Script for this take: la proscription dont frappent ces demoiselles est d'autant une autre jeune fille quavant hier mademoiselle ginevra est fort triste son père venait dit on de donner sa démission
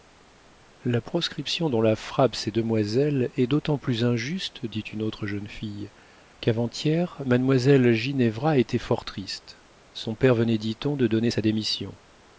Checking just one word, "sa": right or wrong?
right